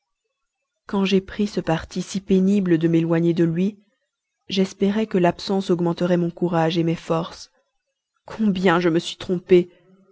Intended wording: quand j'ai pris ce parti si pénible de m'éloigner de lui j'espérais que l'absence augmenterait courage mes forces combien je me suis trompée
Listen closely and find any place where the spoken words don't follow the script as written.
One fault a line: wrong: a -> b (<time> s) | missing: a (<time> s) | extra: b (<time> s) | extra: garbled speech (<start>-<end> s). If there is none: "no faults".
extra: mon (6.2 s)